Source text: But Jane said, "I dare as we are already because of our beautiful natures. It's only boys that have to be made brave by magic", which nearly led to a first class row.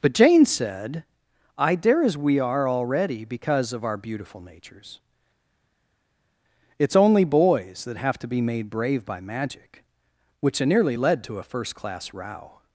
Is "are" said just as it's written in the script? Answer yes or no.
yes